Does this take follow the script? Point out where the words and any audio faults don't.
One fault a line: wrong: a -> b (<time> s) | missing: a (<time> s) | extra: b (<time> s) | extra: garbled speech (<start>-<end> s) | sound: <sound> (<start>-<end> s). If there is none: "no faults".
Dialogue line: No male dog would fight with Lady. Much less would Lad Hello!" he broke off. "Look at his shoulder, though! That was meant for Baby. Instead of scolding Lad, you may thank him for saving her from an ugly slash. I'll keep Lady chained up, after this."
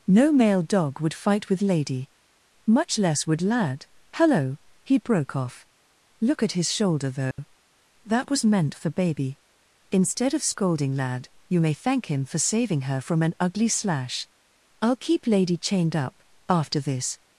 sound: dropout (7.3-7.4 s)